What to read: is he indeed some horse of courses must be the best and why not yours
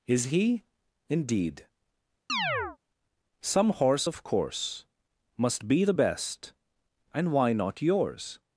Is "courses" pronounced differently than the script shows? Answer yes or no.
yes